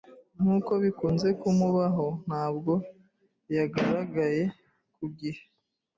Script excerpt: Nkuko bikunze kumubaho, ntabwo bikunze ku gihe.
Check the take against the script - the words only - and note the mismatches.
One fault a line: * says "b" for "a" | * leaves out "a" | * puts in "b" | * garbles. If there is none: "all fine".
* says "yagaragaye" for "bikunze"